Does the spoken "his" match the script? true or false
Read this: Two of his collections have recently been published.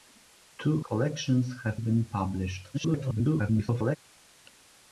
false